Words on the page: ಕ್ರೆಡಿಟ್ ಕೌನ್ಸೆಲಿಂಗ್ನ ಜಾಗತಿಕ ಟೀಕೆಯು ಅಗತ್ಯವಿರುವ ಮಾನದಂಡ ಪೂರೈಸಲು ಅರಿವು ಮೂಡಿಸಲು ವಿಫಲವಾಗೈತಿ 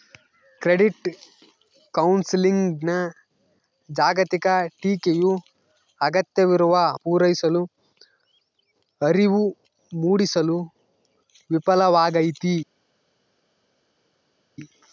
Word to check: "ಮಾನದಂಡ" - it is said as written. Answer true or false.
false